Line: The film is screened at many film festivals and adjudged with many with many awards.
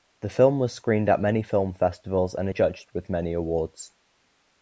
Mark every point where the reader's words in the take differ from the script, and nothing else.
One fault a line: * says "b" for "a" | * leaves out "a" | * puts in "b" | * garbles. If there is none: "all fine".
* says "was" for "is"
* leaves out "with many"